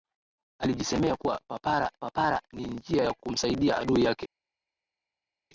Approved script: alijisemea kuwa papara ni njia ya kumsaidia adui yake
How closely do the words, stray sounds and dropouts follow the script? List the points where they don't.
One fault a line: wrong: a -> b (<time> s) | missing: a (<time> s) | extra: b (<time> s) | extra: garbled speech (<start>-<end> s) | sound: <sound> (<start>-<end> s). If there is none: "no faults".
extra: papara (2.0 s)